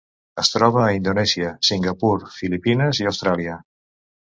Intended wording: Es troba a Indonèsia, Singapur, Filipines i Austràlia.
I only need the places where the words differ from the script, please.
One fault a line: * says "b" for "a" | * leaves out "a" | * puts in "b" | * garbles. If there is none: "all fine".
all fine